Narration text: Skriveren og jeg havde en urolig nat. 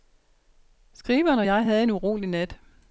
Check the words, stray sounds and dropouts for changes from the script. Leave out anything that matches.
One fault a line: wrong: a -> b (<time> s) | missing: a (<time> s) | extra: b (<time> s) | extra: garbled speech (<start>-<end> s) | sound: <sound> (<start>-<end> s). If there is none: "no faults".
no faults